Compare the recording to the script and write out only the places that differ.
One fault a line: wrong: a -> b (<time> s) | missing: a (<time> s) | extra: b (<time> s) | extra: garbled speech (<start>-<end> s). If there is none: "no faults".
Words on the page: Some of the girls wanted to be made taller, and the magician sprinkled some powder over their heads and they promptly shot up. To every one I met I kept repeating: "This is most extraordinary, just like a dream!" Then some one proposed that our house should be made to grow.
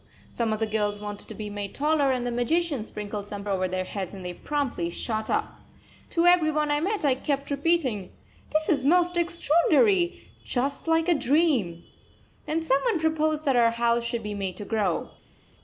missing: powder (3.4 s)